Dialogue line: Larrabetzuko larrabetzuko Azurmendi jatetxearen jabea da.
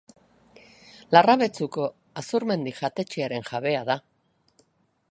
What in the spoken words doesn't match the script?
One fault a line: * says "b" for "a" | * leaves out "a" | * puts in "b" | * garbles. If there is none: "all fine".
* leaves out "larrabetzuko"